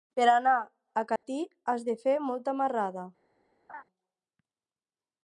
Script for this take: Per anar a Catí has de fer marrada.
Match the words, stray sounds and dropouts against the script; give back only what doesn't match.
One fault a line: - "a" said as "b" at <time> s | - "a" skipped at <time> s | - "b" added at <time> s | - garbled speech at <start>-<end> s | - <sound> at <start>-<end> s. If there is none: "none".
- dropout at 1.2-1.2 s
- "molta" added at 2.3 s
- laugh at 3.7-3.8 s